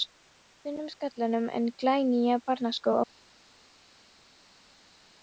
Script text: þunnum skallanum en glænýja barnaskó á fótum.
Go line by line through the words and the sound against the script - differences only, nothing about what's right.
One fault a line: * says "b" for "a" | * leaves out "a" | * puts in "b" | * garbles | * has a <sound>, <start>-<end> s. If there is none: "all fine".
all fine